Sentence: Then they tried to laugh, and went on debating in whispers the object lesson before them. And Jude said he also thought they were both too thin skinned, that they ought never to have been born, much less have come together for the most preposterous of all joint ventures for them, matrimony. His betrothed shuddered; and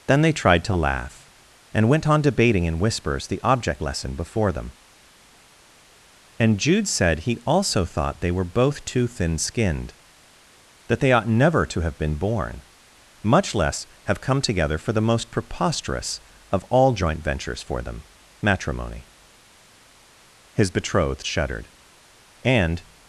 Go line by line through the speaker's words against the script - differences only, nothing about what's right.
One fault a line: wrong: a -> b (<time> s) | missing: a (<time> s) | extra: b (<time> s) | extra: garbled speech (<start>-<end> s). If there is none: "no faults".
no faults